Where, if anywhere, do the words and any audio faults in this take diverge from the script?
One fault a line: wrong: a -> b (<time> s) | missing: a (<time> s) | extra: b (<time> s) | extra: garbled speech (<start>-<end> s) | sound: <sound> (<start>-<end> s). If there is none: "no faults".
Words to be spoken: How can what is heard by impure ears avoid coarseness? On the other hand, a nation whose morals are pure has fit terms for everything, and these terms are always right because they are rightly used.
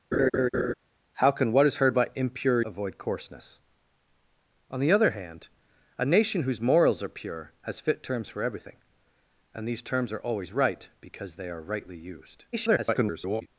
sound: laugh (0.1-0.7 s)
missing: ears (2.6 s)
extra: garbled speech (12.5-13.5 s)